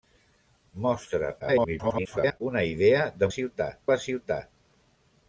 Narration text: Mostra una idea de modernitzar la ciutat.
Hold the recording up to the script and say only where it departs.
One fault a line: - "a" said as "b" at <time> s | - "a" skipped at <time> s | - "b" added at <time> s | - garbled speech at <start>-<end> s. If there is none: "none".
- garbled speech at 1.4-2.4 s
- "modernitzar" said as "ciutat" at 3.3 s